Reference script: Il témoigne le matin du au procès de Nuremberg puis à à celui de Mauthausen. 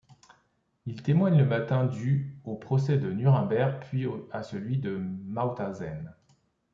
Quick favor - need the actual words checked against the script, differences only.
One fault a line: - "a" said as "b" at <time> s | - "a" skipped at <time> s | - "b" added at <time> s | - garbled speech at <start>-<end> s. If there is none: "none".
- "à" skipped at 4.4 s